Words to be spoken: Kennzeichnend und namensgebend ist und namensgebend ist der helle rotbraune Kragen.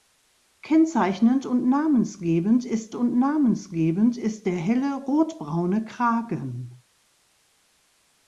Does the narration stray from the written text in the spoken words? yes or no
no